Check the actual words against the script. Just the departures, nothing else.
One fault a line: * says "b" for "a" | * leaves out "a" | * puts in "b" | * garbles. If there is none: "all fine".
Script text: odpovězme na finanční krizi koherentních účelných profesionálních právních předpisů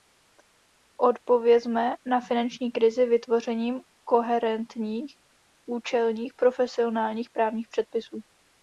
* puts in "vytvořením"